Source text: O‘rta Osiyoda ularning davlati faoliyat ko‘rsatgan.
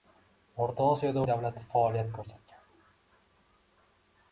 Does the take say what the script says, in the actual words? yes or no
no